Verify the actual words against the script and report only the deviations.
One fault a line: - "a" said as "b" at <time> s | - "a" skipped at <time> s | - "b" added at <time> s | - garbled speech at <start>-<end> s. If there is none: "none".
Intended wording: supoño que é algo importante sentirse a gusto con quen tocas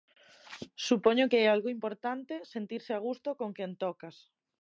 none